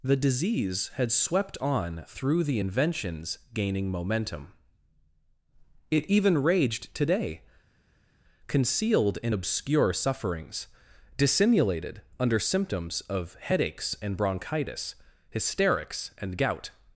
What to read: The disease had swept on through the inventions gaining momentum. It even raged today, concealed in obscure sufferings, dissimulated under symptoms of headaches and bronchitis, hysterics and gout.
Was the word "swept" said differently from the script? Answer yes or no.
no